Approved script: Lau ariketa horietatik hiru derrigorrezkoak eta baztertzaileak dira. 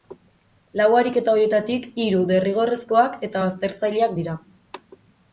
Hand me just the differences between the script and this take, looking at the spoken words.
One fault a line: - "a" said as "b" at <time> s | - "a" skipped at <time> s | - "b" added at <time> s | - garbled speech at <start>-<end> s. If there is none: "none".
none